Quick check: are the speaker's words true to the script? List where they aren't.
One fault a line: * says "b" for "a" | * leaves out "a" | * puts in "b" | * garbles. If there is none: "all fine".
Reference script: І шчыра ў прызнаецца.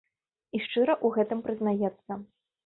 * puts in "гэтым"